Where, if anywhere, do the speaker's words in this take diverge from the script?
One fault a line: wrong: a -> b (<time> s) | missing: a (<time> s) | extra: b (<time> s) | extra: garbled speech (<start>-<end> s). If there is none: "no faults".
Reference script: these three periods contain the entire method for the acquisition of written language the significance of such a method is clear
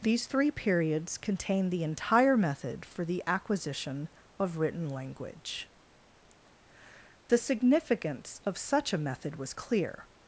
wrong: is -> was (9.4 s)